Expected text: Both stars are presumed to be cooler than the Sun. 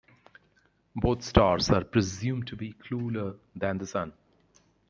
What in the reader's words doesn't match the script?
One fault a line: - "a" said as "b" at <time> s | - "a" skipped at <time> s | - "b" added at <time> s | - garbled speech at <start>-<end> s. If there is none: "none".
none